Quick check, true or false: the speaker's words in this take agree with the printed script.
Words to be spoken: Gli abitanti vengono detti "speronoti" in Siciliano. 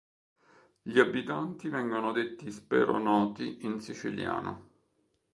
true